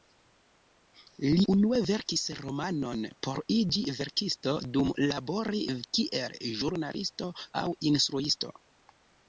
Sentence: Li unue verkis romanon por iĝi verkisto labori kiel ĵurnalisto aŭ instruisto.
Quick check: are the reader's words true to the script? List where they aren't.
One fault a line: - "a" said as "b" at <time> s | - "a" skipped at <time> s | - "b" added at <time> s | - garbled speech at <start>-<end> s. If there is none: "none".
- "dum" added at 4.8 s